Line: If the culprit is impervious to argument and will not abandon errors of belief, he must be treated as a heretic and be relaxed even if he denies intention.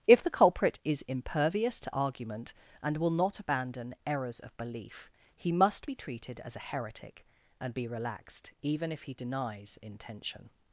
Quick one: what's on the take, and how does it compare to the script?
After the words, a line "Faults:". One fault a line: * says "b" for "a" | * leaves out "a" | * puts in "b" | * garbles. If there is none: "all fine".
If the culprit is impervious to argument and will not abandon errors of belief, he must be treated as a heretic and be relaxed even if he denies intention.
Faults:
all fine